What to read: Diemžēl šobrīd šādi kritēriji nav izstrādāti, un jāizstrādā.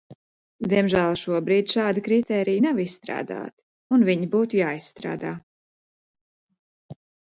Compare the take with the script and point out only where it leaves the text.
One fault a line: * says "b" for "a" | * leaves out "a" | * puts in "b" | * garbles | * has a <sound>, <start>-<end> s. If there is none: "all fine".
* puts in "viņi būtu"